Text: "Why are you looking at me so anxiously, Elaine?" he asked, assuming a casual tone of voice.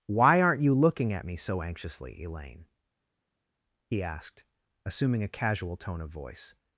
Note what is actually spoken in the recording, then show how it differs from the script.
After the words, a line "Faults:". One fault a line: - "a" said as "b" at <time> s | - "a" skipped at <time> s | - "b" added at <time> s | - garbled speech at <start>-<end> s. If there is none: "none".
"Why aren't you looking at me so anxiously, Elaine?" he asked, assuming a casual tone of voice.
Faults:
- "are" said as "aren't" at 0.4 s